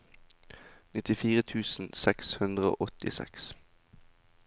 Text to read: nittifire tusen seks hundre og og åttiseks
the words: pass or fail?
fail